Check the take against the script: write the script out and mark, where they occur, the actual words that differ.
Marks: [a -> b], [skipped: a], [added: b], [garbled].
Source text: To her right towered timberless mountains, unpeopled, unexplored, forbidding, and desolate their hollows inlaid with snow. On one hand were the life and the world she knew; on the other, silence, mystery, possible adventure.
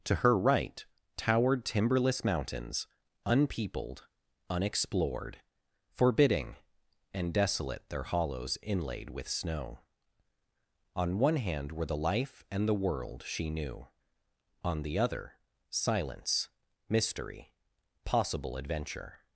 To her right towered timberless mountains, unpeopled, unexplored, forbidding, and desolate their hollows inlaid with snow. On one hand were the life and the world she knew; on the other, silence, mystery, possible adventure.